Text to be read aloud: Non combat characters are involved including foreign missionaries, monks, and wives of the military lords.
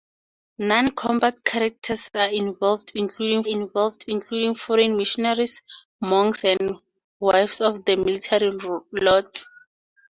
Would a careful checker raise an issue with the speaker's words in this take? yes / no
yes